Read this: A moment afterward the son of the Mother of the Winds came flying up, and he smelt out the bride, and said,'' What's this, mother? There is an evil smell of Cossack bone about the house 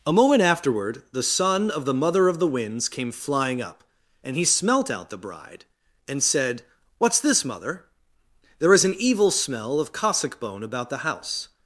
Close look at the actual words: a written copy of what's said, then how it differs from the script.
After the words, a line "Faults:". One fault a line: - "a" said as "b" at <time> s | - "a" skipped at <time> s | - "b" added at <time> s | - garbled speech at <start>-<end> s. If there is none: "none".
A moment afterward the son of the Mother of the Winds came flying up, and he smelt out the bride, and said,'' What's this, mother? There is an evil smell of Cossack bone about the house
Faults:
none